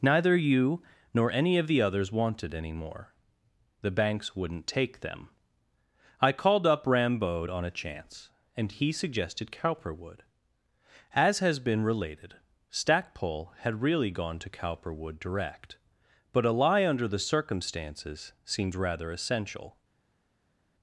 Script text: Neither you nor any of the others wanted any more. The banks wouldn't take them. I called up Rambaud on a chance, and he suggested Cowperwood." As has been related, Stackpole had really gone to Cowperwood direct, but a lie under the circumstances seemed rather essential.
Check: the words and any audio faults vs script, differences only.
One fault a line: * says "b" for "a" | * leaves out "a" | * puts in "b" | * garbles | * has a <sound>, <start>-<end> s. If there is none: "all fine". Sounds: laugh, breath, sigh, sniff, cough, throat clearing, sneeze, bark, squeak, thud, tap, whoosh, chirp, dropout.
all fine